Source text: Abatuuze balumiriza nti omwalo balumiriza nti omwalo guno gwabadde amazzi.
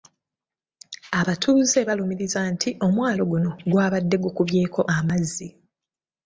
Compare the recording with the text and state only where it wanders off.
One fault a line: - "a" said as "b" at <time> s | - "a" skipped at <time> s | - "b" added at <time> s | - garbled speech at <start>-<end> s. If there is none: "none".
- "balumiriza nti omwalo" skipped at 3.2 s
- "gukubyeko" added at 4.2 s